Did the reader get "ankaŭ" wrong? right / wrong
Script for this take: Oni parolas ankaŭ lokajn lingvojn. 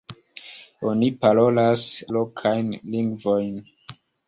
wrong